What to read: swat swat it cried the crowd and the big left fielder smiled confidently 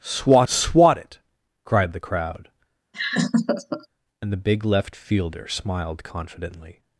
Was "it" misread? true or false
false